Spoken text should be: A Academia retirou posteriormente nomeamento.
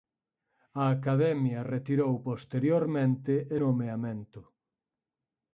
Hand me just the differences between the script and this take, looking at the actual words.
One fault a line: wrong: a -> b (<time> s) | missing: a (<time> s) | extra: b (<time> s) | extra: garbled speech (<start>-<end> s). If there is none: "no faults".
no faults